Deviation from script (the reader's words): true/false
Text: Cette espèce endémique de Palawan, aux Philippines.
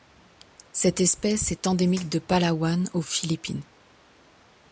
true